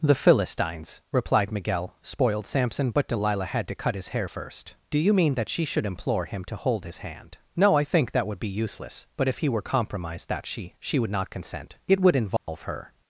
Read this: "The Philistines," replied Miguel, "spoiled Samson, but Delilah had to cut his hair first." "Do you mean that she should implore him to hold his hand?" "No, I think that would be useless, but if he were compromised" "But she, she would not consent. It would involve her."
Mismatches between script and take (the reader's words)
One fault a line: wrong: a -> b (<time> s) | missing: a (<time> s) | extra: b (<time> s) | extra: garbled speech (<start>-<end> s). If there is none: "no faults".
wrong: But -> That (10.3 s)